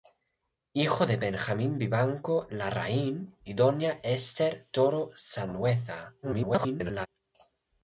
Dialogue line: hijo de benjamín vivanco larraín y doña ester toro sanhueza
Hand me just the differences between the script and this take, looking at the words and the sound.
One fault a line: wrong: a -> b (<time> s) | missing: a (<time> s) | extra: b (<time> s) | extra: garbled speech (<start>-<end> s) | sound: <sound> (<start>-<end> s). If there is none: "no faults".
extra: garbled speech (6.2-7.1 s)